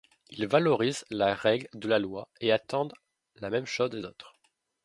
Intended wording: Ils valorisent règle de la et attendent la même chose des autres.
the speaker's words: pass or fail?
fail